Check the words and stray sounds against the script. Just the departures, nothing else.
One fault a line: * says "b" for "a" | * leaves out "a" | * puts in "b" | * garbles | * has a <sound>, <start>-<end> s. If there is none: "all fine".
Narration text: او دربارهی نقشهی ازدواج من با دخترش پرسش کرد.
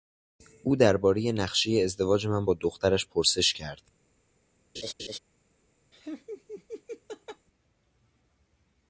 * has a laugh, 4.7-5.2 s
* has a laugh, 5.9-7.5 s